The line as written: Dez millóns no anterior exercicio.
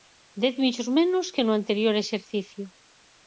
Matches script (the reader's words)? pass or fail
fail